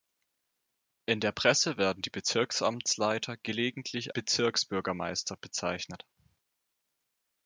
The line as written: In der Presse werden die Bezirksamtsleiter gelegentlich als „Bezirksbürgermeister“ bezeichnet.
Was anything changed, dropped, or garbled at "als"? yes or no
yes